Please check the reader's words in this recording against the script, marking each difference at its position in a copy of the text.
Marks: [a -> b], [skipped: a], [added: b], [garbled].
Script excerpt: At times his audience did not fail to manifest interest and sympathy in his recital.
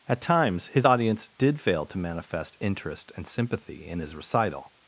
At times his audience did [skipped: not] fail to manifest interest and sympathy in his recital.